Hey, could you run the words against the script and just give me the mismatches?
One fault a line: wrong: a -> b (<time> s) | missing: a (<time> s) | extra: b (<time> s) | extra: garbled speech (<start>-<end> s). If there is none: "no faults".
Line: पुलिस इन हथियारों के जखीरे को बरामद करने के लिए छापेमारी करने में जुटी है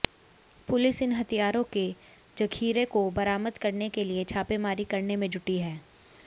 no faults